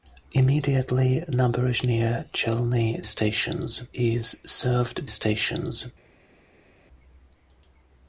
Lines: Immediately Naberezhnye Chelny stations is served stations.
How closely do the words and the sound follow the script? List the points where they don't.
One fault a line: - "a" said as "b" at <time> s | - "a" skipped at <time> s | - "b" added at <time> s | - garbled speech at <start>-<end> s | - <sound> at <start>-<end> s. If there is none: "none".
none